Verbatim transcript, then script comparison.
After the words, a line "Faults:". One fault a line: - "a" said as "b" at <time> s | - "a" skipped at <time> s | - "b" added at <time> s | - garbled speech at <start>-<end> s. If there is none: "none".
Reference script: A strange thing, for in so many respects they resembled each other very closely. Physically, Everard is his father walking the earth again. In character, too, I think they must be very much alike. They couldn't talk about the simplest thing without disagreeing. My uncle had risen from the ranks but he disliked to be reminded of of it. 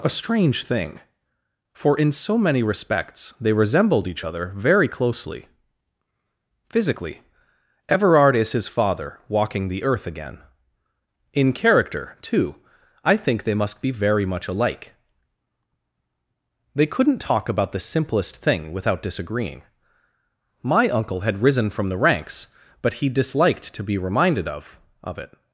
A strange thing, for in so many respects they resembled each other very closely. Physically, Everard is his father walking the earth again. In character, too, I think they must be very much alike. They couldn't talk about the simplest thing without disagreeing. My uncle had risen from the ranks but he disliked to be reminded of of it.
Faults:
none